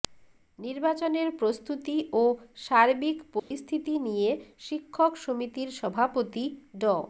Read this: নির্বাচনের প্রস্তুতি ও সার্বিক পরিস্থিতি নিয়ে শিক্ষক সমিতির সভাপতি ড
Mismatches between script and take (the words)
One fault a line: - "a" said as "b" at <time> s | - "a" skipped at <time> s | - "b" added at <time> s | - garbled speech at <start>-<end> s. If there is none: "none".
none